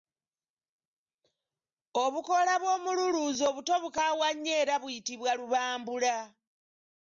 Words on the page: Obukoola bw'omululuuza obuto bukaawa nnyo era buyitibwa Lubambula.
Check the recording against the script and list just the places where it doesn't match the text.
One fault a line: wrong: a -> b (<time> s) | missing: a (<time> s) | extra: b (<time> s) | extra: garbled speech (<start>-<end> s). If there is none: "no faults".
no faults